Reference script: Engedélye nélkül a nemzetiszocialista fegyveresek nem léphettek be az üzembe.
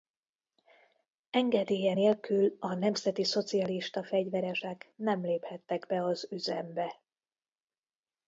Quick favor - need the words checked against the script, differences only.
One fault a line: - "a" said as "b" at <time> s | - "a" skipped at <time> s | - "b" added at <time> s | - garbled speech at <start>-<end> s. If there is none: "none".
none